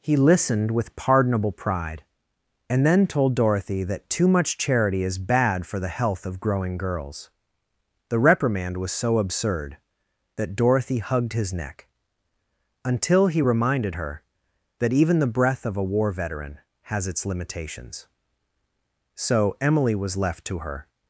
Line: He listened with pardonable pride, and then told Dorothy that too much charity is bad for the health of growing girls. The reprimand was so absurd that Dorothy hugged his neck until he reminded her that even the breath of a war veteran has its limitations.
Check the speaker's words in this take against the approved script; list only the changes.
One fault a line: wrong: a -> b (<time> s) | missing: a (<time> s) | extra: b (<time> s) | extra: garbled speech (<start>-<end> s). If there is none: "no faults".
extra: So Emily was left to her (19.1 s)